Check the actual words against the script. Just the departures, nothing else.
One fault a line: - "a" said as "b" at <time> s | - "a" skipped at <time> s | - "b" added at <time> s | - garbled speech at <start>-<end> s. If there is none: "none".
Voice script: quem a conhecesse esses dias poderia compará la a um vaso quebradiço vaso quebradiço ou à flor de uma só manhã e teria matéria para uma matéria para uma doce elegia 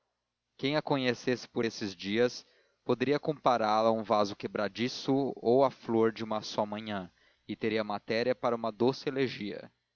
- "por" added at 1.5 s
- "vaso quebradiço" skipped at 5.3 s
- "matéria para uma" skipped at 8.7 s